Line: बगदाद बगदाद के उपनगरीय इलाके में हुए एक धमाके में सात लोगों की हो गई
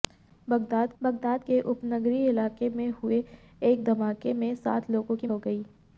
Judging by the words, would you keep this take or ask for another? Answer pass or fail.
pass